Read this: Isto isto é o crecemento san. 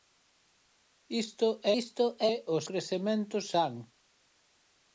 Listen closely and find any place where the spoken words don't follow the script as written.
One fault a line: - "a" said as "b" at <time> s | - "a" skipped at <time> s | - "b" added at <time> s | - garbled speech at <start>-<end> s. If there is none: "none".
none